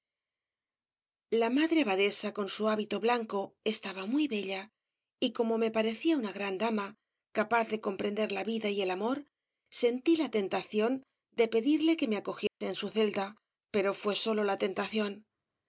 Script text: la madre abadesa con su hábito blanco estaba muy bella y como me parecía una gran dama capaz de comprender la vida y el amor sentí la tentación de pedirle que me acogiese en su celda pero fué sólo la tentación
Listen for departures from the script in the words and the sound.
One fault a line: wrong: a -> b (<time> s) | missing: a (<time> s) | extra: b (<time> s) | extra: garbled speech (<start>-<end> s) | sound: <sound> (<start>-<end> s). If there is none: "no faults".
sound: dropout (12.5-12.6 s)